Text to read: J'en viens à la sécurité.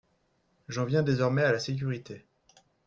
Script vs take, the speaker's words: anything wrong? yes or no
yes